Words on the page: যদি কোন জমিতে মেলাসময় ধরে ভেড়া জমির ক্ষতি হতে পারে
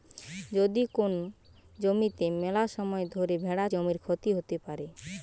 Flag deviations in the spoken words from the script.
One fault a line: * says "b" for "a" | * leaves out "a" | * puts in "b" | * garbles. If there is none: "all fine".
all fine